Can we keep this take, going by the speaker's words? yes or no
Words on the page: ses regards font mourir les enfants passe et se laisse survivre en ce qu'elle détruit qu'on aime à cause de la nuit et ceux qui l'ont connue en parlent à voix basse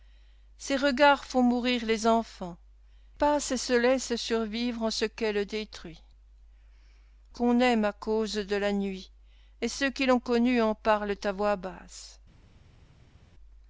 yes